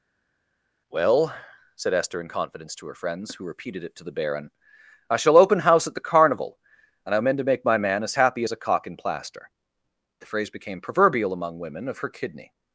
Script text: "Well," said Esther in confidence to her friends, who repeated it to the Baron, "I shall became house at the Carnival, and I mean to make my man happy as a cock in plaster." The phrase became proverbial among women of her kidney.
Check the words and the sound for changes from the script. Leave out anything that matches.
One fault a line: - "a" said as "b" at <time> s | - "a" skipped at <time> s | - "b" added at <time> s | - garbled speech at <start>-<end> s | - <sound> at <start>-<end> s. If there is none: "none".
- "became" said as "open" at 5.4 s
- "as" added at 8.0 s